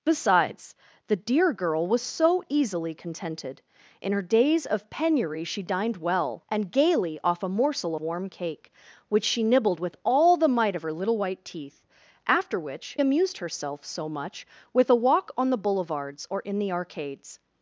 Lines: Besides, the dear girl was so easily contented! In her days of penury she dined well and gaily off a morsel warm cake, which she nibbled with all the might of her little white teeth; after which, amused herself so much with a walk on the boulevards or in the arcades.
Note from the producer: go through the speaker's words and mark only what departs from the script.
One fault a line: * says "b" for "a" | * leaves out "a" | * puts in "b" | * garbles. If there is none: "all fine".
all fine